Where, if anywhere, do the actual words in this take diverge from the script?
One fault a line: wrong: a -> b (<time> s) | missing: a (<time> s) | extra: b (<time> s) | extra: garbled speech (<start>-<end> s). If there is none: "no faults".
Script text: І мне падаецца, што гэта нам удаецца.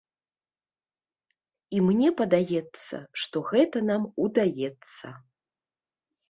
no faults